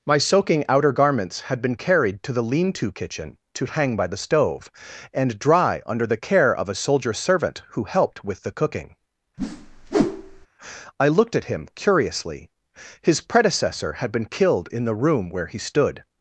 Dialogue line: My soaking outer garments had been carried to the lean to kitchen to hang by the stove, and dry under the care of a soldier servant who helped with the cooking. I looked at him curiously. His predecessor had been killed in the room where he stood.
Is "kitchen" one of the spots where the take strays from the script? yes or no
no